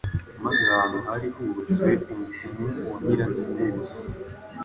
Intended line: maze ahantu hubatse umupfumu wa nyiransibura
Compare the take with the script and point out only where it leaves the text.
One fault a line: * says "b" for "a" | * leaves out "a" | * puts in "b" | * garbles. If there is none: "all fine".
* puts in "hari"